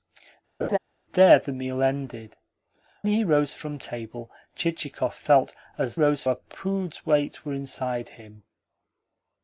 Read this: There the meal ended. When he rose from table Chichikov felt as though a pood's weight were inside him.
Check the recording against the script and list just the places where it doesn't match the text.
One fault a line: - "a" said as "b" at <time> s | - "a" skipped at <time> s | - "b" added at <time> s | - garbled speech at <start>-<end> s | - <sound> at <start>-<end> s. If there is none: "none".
- laugh at 0.6-0.8 s
- "When" skipped at 2.4 s
- "though" said as "rose" at 5.9 s